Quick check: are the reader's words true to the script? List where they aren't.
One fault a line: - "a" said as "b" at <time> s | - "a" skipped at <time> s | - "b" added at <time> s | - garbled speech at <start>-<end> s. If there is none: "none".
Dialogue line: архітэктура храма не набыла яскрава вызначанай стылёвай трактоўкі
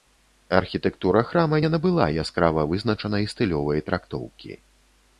none